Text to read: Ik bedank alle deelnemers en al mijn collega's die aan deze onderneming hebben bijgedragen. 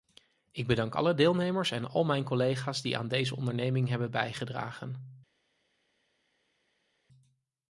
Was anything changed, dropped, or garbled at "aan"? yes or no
no